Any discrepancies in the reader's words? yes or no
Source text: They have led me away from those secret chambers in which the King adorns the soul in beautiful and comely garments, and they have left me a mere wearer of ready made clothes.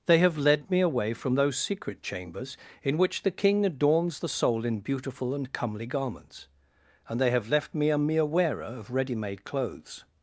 no